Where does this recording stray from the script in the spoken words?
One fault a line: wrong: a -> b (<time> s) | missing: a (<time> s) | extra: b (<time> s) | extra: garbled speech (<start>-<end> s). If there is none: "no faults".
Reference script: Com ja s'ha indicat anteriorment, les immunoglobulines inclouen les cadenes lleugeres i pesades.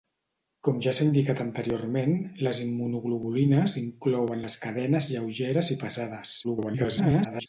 extra: garbled speech (6.4-7.5 s)